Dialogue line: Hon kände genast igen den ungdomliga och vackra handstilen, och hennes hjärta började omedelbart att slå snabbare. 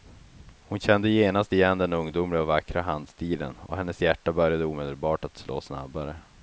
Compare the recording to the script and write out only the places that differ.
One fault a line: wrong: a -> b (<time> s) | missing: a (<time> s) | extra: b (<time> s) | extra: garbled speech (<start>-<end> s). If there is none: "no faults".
no faults